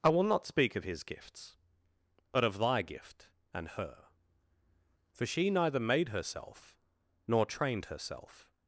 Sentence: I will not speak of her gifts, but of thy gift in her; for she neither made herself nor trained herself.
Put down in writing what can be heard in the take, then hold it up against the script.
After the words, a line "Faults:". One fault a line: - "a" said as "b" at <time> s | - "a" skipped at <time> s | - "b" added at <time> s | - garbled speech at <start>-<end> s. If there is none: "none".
I will not speak of his gifts, but of thy gift and her; for she neither made herself nor trained herself.
Faults:
- "her" said as "his" at 0.8 s
- "in" said as "and" at 3.5 s